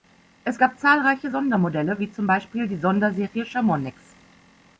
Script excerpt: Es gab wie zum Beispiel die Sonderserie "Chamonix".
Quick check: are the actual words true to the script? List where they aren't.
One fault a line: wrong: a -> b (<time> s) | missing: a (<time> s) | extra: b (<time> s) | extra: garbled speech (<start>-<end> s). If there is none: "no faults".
extra: zahlreiche Sondermodelle (0.8 s)